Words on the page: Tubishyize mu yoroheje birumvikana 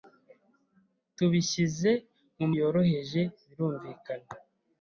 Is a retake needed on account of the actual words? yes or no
no